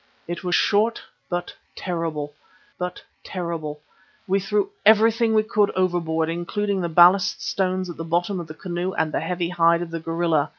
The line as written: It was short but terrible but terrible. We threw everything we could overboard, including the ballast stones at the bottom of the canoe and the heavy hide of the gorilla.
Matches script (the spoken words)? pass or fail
pass